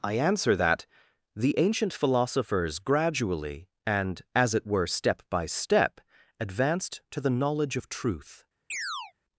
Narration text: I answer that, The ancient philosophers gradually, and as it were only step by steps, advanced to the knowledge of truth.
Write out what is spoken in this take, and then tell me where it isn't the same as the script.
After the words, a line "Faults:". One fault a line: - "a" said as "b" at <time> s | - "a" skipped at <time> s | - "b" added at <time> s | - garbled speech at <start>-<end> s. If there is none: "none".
I answer that, The ancient philosophers gradually, and as it were step by step, advanced to the knowledge of truth.
Faults:
- "only" skipped at 4.9 s
- "steps" said as "step" at 5.5 s